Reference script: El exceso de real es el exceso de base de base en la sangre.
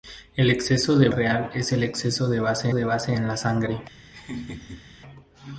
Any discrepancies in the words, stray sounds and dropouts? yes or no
yes